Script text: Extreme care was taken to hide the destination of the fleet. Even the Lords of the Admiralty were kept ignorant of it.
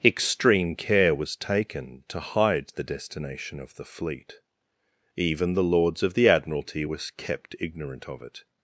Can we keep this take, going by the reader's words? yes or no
yes